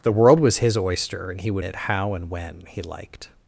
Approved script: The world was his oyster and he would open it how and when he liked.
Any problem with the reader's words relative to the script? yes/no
yes